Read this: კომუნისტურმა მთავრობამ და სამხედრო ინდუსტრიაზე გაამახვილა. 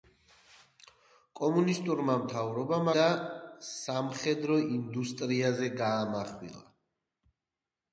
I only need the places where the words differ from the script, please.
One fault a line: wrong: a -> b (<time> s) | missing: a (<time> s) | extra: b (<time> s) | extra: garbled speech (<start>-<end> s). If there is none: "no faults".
no faults